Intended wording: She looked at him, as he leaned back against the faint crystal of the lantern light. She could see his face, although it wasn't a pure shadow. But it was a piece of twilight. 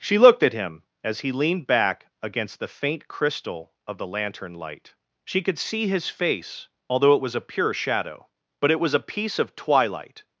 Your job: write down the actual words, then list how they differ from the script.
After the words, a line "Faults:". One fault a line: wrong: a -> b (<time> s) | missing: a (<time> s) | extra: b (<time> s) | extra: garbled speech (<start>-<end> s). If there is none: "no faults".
She looked at him, as he leaned back against the faint crystal of the lantern light. She could see his face, although it was a pure shadow. But it was a piece of twilight.
Faults:
wrong: wasn't -> was (7.2 s)